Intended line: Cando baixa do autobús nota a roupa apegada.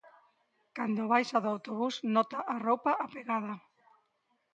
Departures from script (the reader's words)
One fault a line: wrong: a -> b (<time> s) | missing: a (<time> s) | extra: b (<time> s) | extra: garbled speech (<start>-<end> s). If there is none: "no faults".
no faults